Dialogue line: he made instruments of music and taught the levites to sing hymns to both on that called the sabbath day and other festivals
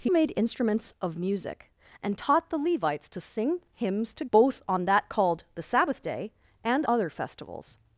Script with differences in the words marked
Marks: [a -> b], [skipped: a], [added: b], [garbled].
he made instruments of music and taught the levites to sing hymns to both on that called the sabbath day and other festivals